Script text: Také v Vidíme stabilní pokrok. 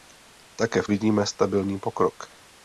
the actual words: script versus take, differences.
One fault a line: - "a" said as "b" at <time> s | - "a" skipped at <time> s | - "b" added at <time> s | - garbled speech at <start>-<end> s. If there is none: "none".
none